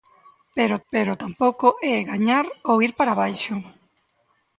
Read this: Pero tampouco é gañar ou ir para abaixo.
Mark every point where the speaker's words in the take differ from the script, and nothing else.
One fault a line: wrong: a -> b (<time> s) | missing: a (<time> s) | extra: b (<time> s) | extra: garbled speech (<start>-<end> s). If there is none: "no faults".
extra: pero (0.9 s)